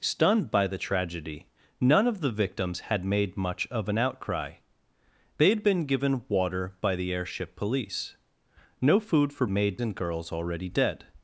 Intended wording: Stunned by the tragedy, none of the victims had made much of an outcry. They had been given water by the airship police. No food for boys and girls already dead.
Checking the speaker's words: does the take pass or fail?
fail